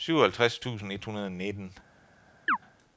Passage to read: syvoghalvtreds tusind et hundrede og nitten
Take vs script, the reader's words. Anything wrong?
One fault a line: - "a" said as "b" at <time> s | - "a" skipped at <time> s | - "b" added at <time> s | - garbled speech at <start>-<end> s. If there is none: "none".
none